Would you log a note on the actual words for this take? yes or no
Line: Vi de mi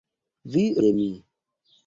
no